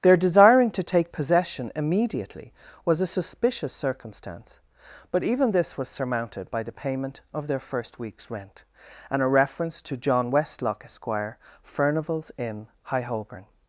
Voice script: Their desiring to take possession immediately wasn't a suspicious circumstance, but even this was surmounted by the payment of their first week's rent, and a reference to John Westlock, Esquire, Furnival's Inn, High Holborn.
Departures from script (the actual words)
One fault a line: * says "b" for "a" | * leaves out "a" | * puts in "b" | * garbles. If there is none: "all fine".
* says "was" for "wasn't"